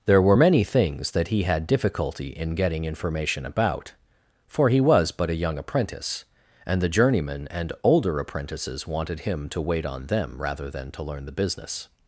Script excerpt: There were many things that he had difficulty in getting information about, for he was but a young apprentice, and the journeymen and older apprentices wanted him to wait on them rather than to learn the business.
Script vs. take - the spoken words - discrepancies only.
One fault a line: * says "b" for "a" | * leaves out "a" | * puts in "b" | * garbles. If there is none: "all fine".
all fine